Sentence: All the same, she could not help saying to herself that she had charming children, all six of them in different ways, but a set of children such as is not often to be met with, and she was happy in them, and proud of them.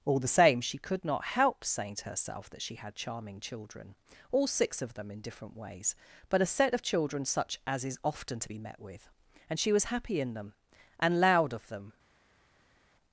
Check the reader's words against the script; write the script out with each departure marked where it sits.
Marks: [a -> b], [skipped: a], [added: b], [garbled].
All the same, she could not help saying to herself that she had charming children, all six of them in different ways, but a set of children such as is [skipped: not] often to be met with, and she was happy in them, and [proud -> loud] of them.